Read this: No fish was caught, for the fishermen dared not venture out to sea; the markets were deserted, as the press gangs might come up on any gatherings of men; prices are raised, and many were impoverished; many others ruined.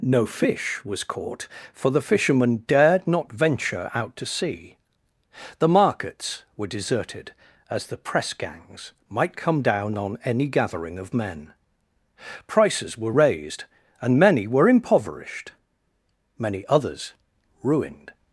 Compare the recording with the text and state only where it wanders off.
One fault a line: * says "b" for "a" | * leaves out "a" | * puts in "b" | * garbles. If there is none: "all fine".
* says "down" for "up"
* says "gathering" for "gatherings"
* says "were" for "are"